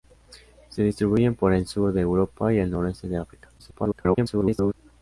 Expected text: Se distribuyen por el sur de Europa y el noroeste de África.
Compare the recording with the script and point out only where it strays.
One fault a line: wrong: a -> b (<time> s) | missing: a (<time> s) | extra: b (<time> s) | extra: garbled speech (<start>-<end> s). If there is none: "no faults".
extra: garbled speech (3.6-4.7 s)